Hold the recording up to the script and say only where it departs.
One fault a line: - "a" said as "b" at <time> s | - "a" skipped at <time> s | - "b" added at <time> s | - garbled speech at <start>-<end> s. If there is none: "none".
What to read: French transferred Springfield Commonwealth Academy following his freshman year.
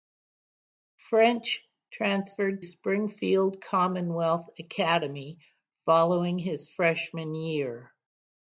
none